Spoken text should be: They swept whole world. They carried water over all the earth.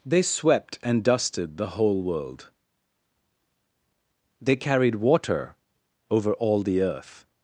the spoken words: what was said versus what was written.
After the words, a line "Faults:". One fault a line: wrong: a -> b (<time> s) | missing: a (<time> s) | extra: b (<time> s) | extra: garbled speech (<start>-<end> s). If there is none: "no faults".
They swept and dusted the whole world. They carried water over all the earth.
Faults:
extra: and dusted the (0.8 s)